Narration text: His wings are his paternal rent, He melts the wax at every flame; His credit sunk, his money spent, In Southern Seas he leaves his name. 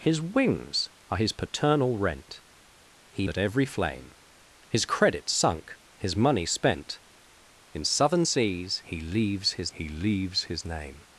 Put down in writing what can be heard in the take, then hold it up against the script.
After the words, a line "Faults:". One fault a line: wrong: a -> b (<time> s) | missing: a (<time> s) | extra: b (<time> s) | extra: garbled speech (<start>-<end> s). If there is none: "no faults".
His wings are his paternal rent, He at every flame; His credit sunk, his money spent, In Southern Seas he leaves his he leaves his name.
Faults:
missing: melts the wax (3.3 s)
extra: he leaves his (9.7 s)